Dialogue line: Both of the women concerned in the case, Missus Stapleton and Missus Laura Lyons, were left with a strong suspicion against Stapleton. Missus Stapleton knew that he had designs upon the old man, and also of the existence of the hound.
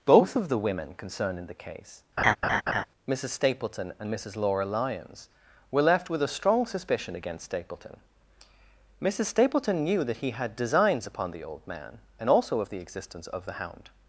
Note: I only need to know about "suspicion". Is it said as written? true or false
true